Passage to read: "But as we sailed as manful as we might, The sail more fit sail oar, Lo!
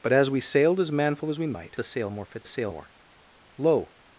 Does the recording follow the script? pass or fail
pass